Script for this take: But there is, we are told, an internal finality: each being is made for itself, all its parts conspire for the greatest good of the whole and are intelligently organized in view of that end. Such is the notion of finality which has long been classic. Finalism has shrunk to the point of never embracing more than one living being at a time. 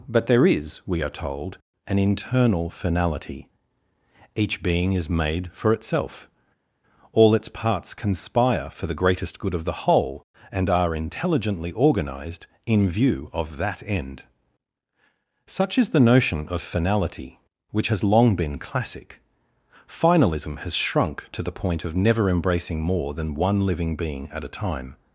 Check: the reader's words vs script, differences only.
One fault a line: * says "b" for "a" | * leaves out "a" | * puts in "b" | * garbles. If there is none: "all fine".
all fine